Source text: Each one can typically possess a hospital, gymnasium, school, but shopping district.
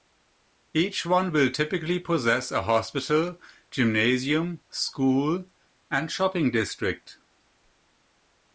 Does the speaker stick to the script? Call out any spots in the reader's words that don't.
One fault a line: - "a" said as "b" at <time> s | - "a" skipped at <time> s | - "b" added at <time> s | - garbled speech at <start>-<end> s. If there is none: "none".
- "can" said as "will" at 1.3 s
- "but" said as "and" at 5.9 s